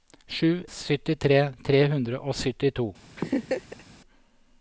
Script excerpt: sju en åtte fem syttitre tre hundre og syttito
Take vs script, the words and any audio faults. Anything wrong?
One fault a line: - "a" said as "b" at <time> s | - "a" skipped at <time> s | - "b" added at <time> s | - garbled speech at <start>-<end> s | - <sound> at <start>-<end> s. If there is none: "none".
- "en åtte fem" skipped at 0.7 s
- laugh at 3.2-3.8 s